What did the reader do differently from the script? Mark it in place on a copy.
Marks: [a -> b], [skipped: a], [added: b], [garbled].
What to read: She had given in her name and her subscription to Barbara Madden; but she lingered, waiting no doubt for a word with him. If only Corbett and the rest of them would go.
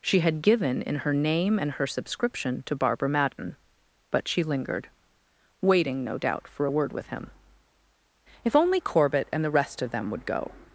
She had given in her name and her subscription to Barbara Madden; but she lingered, waiting no doubt for a word with him. If only Corbett and the rest of them would go.